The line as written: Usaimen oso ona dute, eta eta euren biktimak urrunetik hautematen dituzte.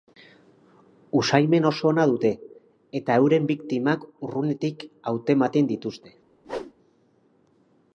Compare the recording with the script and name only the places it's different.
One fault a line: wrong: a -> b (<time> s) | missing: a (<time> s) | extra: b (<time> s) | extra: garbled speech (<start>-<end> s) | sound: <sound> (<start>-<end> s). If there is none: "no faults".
missing: eta (3.2 s)
sound: whoosh (6.4-6.7 s)